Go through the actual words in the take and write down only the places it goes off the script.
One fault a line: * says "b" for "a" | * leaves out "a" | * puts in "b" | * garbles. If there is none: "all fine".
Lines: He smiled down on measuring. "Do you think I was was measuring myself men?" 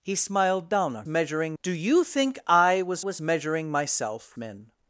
all fine